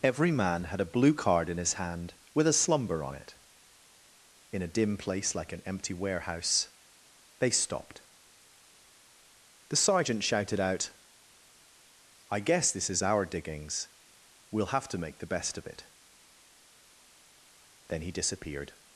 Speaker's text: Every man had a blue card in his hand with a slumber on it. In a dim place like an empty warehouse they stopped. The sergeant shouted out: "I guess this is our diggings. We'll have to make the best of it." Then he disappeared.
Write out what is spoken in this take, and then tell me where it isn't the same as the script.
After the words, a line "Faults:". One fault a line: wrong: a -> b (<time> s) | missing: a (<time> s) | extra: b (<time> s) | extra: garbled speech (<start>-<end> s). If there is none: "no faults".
Every man had a blue card in his hand with a slumber on it. In a dim place like an empty warehouse they stopped. The sergeant shouted out: "I guess this is our diggings. We'll have to make the best of it." Then he disappeared.
Faults:
no faults